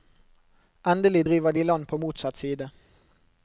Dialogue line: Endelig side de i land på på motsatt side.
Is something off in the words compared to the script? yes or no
yes